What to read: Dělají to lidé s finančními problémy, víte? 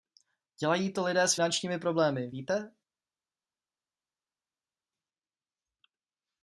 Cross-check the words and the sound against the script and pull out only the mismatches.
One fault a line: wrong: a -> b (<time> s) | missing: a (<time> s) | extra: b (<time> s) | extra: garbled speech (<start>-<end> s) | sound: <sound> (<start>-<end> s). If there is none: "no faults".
no faults